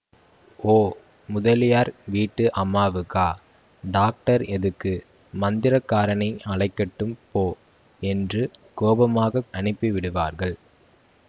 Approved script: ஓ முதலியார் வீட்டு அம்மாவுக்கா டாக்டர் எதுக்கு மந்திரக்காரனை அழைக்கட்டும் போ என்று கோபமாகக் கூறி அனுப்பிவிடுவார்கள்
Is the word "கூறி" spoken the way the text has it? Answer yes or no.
no